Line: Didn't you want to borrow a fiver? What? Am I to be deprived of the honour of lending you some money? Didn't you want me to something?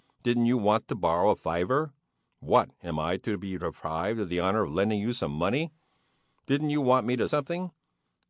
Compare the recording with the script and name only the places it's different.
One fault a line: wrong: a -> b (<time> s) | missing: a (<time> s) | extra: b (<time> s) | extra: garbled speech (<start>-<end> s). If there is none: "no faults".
no faults